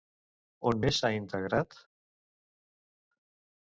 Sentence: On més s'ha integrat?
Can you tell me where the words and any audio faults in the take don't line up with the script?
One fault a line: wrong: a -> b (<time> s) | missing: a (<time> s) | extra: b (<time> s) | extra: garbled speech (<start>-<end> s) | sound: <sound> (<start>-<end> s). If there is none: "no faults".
no faults